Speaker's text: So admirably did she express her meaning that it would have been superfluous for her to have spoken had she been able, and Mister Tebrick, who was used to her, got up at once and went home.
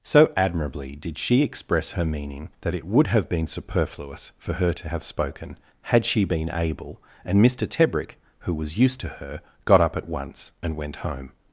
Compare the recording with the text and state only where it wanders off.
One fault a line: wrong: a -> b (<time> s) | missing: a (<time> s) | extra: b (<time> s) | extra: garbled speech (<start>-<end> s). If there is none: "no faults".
no faults